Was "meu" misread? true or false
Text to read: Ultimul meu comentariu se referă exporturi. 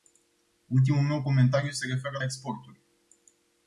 false